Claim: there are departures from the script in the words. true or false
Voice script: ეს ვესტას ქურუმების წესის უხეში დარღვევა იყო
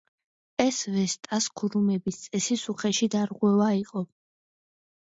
false